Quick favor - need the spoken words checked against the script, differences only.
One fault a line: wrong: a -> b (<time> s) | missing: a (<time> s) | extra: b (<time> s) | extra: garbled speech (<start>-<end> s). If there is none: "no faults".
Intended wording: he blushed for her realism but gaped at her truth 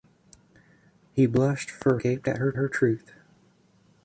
missing: her realism but (2.0 s)
extra: her (2.5 s)